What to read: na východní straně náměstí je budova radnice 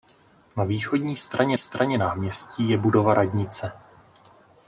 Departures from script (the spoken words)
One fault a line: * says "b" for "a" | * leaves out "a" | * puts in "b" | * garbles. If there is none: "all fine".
* puts in "straně"